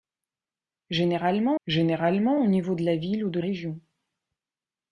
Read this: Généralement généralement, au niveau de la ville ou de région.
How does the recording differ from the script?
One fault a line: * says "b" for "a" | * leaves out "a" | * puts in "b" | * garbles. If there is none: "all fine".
all fine